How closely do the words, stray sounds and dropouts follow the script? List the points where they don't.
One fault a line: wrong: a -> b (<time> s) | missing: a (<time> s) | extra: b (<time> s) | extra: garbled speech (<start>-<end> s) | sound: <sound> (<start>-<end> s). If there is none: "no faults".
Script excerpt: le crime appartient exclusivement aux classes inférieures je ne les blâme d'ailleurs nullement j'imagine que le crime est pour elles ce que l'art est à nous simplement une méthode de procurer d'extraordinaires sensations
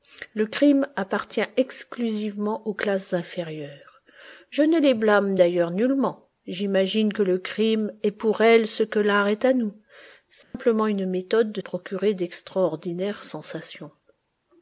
sound: dropout (10.4-10.5 s)